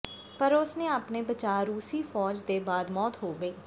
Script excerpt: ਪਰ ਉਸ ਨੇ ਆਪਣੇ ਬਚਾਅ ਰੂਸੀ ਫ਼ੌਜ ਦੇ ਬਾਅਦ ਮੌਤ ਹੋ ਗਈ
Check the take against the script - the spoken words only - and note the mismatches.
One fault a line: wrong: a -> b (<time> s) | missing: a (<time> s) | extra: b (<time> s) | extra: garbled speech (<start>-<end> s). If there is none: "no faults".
no faults